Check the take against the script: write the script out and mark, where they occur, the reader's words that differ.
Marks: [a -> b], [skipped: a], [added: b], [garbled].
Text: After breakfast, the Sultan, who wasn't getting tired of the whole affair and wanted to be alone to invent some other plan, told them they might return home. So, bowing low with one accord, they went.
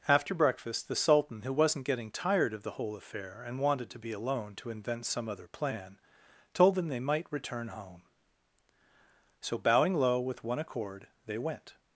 After breakfast, the Sultan, who wasn't getting tired of the whole affair and wanted to be alone to invent some other plan, told them they might return home. So, bowing low with one accord, they went.